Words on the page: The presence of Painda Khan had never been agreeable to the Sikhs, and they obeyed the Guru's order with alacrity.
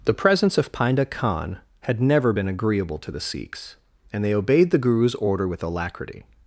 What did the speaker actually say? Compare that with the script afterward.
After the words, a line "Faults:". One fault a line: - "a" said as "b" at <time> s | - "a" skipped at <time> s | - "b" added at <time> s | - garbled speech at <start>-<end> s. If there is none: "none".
The presence of Painda Khan had never been agreeable to the Sikhs, and they obeyed the Guru's order with alacrity.
Faults:
none